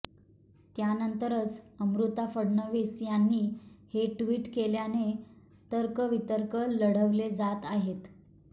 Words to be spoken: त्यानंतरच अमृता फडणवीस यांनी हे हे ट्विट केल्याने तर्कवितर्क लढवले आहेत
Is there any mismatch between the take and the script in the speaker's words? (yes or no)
yes